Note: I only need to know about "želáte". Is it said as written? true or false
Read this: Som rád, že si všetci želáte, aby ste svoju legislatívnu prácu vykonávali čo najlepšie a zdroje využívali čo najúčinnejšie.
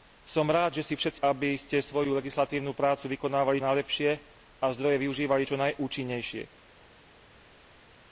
false